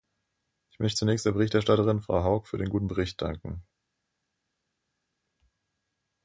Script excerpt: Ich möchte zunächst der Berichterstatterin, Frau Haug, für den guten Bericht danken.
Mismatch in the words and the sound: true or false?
false